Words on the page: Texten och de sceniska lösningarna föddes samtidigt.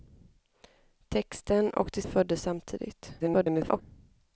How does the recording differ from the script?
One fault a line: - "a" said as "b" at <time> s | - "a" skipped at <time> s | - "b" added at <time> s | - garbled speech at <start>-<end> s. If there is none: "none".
- "sceniska lösningarna" skipped at 2.0 s
- garbled speech at 3.2-3.8 s